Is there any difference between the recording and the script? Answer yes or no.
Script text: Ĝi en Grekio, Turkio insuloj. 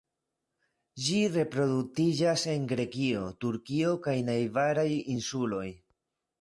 yes